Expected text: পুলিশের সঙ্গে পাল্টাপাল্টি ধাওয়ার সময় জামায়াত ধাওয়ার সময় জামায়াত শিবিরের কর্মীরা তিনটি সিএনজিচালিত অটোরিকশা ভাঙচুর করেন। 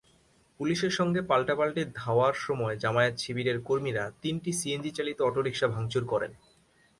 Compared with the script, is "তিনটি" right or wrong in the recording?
right